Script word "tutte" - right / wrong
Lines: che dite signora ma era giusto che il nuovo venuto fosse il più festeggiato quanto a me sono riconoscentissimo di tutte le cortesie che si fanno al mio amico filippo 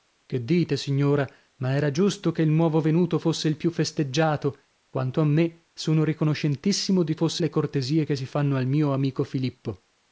wrong